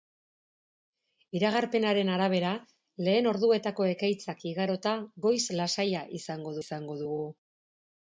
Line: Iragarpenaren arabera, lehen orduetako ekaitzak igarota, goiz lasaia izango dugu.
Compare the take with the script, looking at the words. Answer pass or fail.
fail